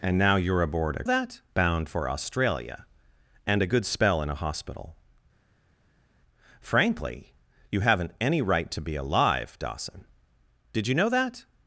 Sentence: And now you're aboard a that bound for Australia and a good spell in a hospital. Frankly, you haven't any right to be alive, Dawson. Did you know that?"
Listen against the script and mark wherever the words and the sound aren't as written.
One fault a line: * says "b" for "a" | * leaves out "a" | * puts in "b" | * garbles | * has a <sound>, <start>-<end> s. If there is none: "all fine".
all fine